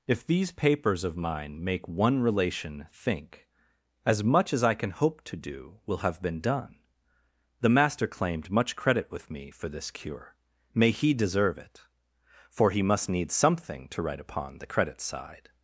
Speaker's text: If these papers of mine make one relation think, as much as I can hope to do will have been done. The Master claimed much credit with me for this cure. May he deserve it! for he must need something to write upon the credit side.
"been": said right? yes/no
yes